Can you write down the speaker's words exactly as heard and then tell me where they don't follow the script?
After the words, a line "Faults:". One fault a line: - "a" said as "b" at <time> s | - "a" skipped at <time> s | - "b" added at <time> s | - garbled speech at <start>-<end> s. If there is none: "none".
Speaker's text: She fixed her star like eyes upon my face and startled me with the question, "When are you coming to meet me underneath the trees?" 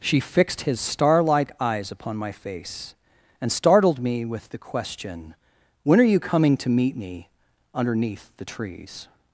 She fixed his star like eyes upon my face and startled me with the question, "When are you coming to meet me underneath the trees?"
Faults:
- "her" said as "his" at 0.6 s